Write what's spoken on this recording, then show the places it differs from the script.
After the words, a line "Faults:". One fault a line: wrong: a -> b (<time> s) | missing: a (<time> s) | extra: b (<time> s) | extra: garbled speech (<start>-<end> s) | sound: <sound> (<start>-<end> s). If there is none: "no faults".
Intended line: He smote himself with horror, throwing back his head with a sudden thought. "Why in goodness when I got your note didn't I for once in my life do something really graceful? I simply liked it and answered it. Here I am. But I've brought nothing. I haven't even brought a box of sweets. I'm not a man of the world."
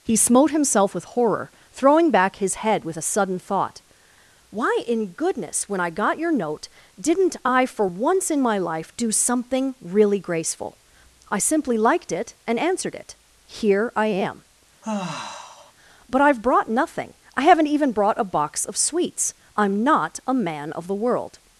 He smote himself with horror, throwing back his head with a sudden thought. "Why in goodness when I got your note didn't I for once in my life do something really graceful? I simply liked it and answered it. Here I am. But I've brought nothing. I haven't even brought a box of sweets. I'm not a man of the world."
Faults:
sound: sigh (14.8-15.7 s)